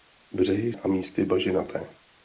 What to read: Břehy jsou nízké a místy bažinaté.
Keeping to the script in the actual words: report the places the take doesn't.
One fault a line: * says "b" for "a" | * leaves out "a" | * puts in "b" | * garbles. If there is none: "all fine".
* leaves out "jsou nízké"